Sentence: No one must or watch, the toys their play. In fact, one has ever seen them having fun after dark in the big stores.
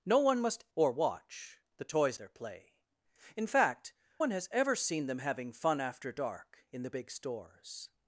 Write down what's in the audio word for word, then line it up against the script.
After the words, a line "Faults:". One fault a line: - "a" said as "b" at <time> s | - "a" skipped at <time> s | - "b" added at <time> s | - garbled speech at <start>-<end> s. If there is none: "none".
No one must or watch, the toys their play. In fact, one has ever seen them having fun after dark in the big stores.
Faults:
none